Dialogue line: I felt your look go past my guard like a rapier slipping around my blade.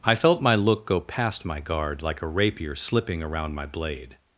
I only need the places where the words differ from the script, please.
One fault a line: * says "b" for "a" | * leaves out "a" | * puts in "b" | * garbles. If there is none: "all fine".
* says "my" for "your"